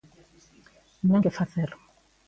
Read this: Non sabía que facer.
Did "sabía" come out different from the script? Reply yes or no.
yes